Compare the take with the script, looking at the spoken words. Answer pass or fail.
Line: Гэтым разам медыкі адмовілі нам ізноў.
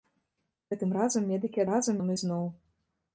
fail